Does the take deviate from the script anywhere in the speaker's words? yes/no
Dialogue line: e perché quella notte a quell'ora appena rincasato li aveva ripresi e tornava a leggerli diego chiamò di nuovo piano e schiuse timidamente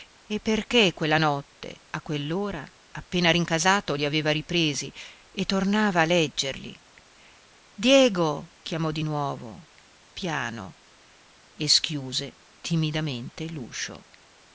no